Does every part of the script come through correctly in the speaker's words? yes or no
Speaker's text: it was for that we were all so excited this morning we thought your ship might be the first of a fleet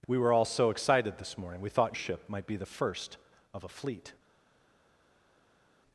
no